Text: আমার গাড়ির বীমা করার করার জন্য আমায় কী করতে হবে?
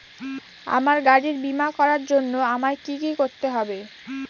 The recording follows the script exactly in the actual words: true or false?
false